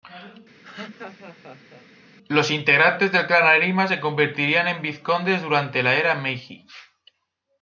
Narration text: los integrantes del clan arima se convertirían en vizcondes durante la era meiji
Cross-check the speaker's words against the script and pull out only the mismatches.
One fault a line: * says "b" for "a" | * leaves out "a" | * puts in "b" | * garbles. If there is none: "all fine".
all fine